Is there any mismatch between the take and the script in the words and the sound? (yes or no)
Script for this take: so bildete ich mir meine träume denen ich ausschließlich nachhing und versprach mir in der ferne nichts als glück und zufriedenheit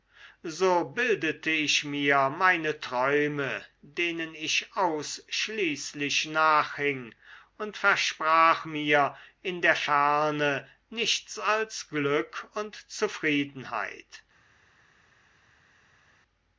no